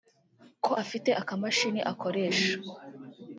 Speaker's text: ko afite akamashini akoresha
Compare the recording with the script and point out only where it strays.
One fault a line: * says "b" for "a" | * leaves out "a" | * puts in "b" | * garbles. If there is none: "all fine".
all fine